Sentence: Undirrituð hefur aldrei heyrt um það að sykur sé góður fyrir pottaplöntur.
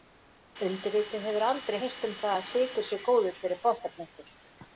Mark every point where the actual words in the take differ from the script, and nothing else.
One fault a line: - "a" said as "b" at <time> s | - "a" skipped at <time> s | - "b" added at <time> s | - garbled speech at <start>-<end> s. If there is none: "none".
none